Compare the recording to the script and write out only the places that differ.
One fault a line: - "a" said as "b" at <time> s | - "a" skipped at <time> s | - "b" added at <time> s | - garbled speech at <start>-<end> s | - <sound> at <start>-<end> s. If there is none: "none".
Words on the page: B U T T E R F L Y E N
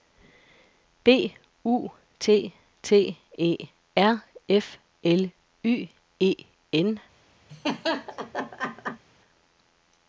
- laugh at 7.5-9.0 s